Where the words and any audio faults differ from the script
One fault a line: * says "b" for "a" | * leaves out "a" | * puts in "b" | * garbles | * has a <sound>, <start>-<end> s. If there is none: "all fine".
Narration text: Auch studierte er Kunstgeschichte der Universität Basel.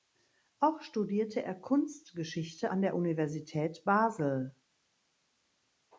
* puts in "an"